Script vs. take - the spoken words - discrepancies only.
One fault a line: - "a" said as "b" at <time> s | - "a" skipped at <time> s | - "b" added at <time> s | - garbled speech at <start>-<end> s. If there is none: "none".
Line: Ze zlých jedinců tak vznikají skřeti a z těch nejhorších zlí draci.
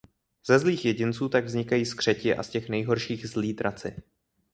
none